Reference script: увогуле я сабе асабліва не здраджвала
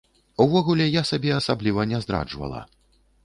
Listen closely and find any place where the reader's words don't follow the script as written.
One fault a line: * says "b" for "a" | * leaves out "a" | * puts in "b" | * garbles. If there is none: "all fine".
all fine